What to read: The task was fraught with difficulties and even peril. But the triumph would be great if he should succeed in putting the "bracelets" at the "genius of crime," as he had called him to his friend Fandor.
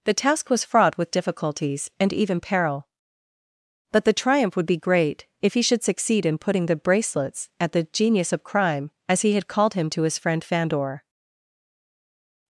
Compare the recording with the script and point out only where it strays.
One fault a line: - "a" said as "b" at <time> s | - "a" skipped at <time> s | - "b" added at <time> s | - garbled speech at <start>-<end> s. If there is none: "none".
none